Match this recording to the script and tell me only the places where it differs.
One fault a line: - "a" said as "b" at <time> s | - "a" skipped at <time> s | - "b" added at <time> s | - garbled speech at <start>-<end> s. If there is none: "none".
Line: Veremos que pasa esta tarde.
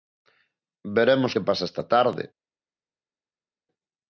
none